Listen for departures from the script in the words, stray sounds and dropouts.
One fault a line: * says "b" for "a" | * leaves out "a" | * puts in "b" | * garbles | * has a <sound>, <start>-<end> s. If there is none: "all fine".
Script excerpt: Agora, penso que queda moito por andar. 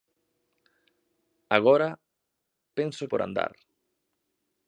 * leaves out "que queda moito"